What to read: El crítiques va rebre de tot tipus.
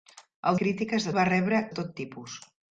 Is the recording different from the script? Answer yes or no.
no